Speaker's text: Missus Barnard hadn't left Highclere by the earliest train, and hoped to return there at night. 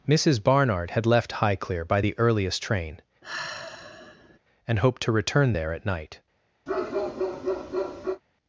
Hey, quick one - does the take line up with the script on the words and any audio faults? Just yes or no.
no